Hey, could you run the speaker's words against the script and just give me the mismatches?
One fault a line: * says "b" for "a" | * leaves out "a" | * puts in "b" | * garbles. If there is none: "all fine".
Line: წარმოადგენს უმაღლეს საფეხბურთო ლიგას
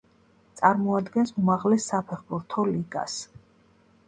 all fine